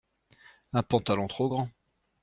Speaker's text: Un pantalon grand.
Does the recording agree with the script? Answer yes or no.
no